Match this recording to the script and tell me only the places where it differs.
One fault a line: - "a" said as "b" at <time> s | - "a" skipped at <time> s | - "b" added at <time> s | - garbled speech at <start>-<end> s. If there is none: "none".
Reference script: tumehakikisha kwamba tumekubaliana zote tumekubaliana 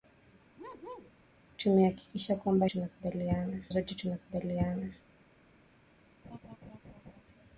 none